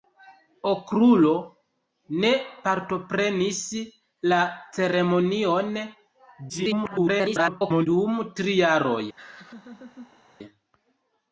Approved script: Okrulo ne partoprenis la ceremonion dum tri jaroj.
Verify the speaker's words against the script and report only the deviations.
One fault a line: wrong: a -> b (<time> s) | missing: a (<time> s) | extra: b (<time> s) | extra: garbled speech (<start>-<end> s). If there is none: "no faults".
extra: garbled speech (6.5-7.9 s)